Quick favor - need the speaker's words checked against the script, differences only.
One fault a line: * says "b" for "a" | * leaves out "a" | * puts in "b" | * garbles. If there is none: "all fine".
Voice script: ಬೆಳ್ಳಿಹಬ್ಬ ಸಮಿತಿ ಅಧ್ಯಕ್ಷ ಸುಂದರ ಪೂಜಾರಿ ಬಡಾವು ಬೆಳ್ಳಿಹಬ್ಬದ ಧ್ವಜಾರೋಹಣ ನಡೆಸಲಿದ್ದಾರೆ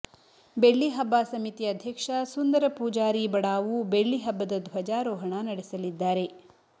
all fine